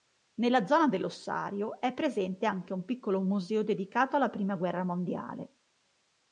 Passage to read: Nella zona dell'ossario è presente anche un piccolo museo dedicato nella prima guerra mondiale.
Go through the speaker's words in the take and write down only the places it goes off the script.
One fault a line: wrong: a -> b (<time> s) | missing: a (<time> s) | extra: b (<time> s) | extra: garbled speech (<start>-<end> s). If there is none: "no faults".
wrong: nella -> alla (4.2 s)